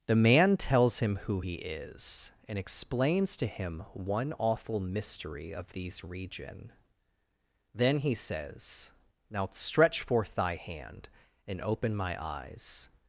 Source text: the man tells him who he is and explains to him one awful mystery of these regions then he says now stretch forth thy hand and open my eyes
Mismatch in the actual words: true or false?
true